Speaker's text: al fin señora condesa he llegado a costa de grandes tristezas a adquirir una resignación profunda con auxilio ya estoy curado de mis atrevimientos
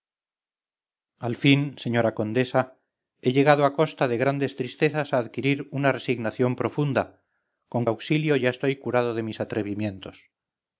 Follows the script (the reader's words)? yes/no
yes